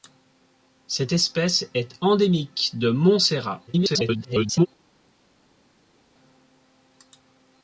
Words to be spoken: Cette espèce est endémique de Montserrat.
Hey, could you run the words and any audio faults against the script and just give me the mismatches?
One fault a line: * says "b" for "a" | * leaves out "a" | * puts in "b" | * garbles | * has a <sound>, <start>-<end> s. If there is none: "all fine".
* garbles